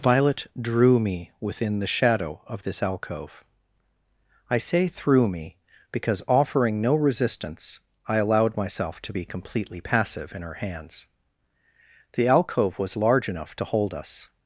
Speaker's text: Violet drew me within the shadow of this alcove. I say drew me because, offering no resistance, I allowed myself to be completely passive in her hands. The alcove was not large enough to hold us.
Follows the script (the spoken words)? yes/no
no